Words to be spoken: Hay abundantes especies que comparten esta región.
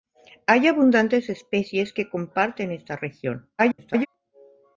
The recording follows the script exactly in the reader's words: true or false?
false